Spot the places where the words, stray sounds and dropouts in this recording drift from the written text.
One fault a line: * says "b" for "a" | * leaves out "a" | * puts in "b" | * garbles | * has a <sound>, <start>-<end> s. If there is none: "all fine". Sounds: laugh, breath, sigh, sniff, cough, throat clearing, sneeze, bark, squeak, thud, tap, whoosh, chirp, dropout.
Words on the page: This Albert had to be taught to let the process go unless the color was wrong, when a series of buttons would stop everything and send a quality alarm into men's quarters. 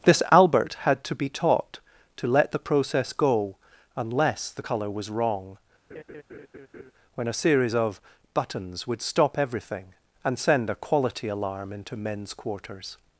* has a laugh, 5.9-6.9 s